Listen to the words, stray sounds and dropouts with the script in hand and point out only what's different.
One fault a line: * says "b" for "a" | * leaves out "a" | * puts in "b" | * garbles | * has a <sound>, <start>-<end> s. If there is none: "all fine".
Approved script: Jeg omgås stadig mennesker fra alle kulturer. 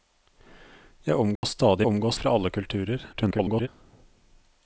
* has a dropout, 1.4-1.4 s
* says "omgås" for "mennesker"
* garbles